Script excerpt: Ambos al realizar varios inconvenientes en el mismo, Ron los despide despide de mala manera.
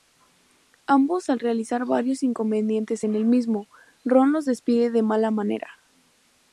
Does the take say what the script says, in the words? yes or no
no